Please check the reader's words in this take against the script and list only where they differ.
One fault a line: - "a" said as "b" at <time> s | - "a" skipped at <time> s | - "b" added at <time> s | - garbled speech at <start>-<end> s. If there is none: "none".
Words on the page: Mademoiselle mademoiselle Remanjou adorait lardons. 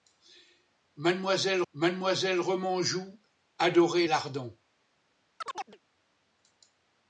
none